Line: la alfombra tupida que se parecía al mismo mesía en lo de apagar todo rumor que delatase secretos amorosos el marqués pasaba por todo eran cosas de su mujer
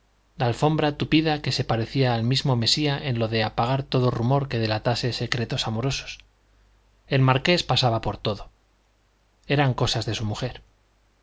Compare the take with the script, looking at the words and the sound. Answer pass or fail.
pass